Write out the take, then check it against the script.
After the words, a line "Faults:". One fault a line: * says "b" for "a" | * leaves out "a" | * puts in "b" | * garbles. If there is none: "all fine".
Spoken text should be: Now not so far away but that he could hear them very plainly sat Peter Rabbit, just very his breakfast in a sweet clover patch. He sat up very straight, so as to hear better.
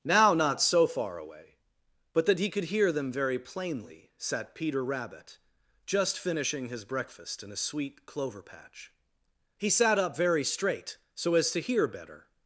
Now not so far away but that he could hear them very plainly sat Peter Rabbit, just finishing his breakfast in a sweet clover patch. He sat up very straight, so as to hear better.
Faults:
* says "finishing" for "very"